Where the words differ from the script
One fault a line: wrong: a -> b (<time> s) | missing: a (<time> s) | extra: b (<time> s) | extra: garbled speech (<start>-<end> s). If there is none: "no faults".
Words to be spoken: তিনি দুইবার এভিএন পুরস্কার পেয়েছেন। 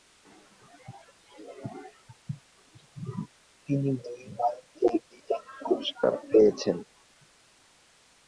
no faults